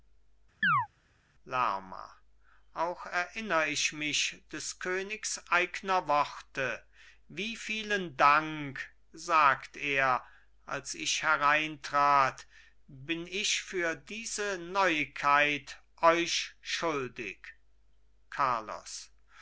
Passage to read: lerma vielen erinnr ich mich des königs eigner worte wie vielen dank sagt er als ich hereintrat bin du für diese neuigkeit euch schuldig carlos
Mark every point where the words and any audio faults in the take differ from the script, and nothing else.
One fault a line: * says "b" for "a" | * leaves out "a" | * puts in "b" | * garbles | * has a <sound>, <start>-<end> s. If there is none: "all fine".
* has a chirp, 0.6-0.9 s
* says "auch" for "vielen"
* says "ich" for "du"